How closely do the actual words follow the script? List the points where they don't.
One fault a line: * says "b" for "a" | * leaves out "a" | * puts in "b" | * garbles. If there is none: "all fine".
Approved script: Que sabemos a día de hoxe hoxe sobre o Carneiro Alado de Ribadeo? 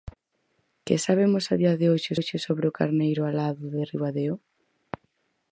all fine